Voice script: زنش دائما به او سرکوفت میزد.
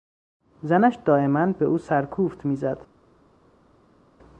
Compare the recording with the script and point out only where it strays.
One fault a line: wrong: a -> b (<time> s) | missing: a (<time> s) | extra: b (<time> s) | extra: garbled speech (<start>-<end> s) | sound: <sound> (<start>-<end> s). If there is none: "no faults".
no faults